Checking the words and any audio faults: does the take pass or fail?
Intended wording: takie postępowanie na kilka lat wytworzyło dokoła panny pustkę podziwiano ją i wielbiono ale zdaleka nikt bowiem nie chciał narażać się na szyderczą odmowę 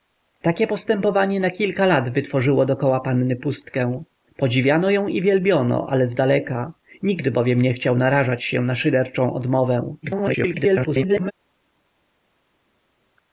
fail